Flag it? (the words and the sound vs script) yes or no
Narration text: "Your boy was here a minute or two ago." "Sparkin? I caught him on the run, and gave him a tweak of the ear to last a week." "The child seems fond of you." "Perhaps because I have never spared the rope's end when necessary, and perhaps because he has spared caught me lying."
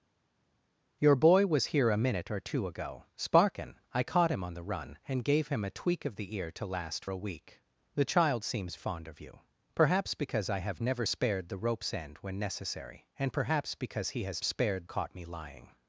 no